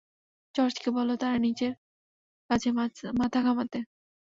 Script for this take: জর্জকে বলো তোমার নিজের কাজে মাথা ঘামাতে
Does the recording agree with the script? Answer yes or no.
no